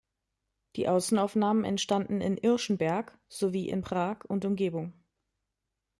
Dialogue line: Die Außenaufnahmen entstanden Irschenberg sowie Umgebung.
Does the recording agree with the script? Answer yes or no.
no